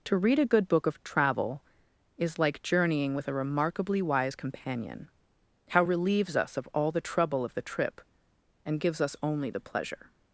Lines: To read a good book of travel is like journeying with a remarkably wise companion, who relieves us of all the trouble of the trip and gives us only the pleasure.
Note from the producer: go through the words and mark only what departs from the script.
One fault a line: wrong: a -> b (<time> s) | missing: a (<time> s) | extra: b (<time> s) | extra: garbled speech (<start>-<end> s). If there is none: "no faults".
wrong: who -> how (5.7 s)